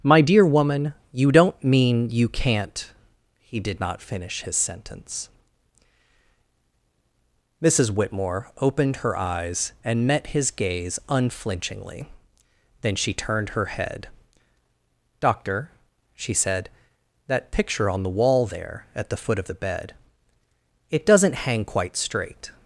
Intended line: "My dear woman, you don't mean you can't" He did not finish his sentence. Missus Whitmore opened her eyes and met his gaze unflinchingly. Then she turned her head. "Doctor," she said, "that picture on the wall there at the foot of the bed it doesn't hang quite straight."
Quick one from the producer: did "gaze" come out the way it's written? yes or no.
yes